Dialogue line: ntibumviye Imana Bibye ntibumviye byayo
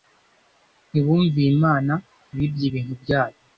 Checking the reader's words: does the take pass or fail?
fail